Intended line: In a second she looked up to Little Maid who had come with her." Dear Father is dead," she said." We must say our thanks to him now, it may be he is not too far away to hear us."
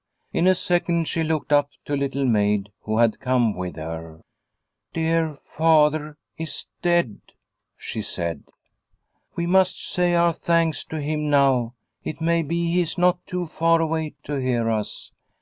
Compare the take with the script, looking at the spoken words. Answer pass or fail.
pass